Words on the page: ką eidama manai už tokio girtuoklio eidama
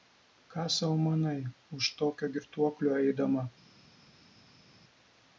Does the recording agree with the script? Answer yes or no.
no